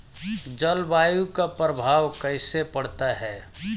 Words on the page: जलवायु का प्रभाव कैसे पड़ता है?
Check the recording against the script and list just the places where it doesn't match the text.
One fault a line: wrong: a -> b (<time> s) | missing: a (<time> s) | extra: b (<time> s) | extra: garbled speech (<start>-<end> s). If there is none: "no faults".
no faults